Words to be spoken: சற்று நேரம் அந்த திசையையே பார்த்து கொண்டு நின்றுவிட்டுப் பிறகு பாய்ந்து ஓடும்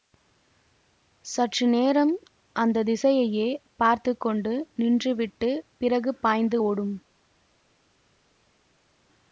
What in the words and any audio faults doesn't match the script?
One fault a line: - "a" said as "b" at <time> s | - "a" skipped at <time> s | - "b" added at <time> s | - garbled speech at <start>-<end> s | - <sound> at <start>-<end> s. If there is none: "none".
none